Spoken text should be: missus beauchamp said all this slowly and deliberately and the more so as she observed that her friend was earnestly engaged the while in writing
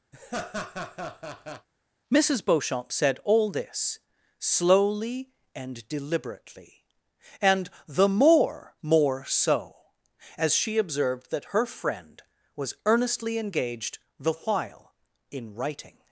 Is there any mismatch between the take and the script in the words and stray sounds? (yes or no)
yes